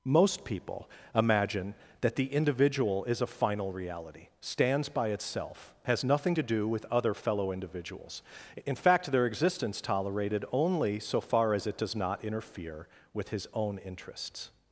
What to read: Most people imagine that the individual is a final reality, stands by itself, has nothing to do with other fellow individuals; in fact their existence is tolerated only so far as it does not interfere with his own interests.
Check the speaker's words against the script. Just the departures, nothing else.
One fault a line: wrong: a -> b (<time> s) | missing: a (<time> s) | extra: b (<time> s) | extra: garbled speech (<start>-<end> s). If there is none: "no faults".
missing: is (9.8 s)